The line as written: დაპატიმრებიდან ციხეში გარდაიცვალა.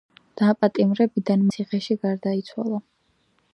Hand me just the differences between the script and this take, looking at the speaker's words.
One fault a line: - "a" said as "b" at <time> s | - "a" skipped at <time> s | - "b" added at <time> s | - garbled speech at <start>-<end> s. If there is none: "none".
none